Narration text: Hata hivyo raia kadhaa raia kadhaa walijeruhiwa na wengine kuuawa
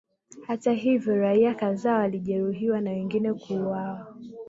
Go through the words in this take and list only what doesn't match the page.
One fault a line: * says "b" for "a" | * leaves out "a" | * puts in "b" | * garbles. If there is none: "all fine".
* leaves out "raia kadhaa"